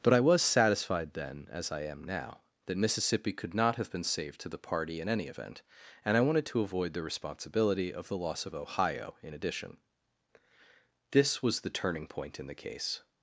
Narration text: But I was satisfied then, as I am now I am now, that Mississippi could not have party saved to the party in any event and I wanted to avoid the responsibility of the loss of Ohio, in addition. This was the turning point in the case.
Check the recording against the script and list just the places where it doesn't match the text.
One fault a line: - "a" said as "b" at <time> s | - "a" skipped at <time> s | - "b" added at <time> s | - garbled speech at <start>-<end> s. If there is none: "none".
- "I am now" skipped at 2.4 s
- "party" said as "been" at 3.9 s